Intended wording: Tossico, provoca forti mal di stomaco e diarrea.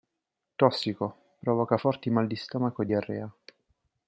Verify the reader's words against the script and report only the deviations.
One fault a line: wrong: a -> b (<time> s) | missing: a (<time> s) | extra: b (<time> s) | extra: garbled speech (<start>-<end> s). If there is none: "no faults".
no faults